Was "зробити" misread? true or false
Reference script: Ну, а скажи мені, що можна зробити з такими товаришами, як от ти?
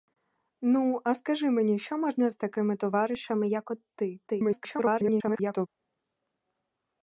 true